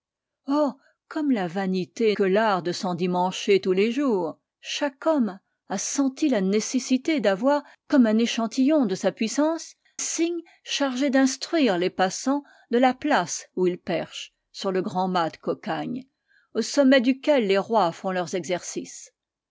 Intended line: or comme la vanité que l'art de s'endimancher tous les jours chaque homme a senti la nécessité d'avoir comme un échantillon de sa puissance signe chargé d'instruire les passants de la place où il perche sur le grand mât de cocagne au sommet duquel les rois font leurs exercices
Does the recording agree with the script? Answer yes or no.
yes